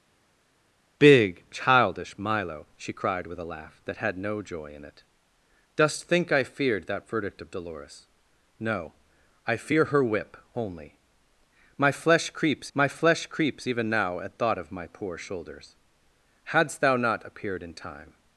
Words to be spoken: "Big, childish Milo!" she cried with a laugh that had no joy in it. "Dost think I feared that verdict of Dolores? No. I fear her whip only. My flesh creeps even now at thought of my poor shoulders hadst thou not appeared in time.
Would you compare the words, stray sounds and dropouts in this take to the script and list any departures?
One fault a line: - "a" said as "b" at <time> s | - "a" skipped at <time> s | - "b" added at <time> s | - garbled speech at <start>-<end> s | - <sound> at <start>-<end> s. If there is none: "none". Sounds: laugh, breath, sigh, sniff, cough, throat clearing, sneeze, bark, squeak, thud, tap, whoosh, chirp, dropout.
- "my flesh creeps" added at 12.7 s